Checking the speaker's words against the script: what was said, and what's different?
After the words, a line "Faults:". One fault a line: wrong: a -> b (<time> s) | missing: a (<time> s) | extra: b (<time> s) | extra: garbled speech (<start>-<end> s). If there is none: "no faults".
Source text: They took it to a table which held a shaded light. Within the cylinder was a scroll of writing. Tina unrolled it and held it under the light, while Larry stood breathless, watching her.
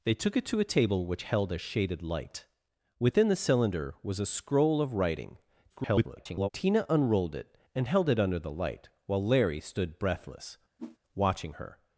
They took it to a table which held a shaded light. Within the cylinder was a scroll of writing. [garbled] Tina unrolled it and held it under the light, while Larry stood breathless, watching her.
Faults:
extra: garbled speech (5.7-6.5 s)